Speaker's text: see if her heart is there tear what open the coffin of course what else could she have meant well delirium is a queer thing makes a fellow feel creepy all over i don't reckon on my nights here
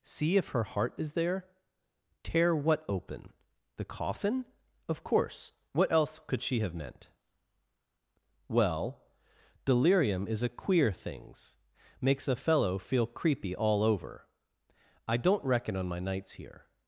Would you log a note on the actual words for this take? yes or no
yes